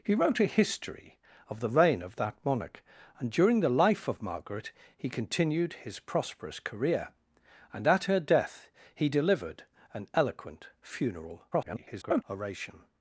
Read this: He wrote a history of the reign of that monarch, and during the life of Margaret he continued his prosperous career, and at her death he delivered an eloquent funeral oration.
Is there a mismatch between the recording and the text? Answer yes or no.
yes